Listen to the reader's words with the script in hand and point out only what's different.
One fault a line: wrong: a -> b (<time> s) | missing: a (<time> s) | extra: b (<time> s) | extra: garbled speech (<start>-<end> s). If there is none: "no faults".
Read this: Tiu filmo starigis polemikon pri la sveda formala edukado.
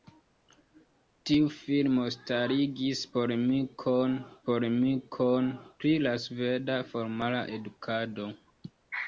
extra: polemikon (4.5 s)